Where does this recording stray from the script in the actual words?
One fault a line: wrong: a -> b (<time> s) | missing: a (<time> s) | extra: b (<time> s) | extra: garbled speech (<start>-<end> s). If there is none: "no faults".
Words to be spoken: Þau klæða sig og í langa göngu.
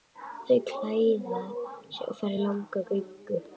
extra: fara (2.2 s)